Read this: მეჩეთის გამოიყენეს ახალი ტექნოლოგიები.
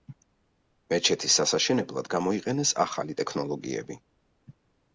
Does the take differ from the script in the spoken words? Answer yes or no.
yes